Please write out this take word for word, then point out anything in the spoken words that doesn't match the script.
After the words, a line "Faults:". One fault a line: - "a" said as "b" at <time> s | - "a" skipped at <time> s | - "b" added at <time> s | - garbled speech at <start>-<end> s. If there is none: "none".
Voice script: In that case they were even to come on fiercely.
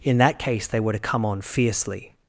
In that case they were to come on fiercely.
Faults:
- "even" skipped at 0.9 s